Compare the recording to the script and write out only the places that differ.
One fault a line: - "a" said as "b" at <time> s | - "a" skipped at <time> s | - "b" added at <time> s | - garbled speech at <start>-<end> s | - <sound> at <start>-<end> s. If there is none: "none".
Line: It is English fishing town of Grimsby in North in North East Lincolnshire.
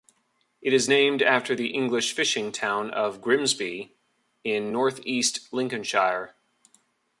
- "named after the" added at 0.9 s
- "in North" skipped at 5.0 s